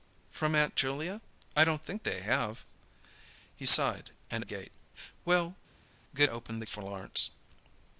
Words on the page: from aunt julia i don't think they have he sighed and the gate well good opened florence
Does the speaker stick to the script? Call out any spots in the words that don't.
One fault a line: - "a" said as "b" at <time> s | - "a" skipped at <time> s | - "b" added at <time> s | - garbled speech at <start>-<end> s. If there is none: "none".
none